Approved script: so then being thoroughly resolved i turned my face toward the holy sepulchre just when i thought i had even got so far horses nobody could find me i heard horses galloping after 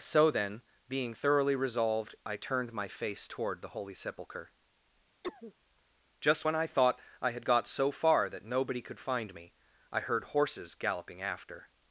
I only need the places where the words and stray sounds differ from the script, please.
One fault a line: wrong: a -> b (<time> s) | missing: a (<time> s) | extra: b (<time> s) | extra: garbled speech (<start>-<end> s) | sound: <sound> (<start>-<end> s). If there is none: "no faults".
sound: cough (5.2-5.5 s)
missing: even (7.4 s)
wrong: horses -> that (8.3 s)